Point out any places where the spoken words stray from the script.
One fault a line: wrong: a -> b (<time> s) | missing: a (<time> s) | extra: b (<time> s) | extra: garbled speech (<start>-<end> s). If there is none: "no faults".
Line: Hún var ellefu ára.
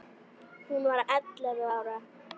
no faults